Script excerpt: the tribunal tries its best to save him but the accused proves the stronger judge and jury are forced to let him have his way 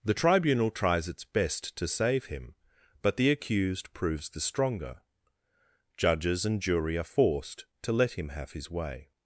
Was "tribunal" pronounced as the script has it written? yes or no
yes